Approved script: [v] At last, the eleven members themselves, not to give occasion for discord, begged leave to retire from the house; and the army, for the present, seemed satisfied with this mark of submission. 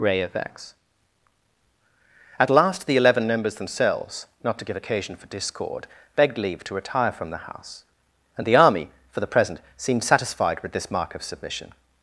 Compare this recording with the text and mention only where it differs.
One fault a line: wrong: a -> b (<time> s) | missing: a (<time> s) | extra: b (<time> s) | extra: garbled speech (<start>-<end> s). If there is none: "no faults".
wrong: v -> ray of x (0.0 s)